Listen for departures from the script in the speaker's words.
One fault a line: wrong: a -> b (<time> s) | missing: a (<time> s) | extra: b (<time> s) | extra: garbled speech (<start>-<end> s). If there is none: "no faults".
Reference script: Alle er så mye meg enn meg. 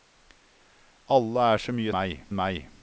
no faults